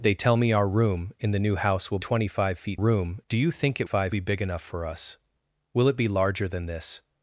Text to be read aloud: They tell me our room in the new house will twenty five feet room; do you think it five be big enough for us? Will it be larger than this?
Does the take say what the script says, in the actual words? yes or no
yes